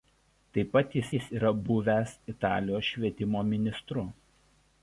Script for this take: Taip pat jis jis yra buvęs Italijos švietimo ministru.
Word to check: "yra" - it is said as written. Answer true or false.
true